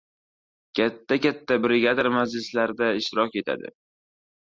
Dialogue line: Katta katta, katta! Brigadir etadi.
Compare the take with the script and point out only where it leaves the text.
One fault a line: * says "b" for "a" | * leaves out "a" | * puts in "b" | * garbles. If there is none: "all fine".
* says "Brigadir majlislarda ishtirok" for "katta Brigadir"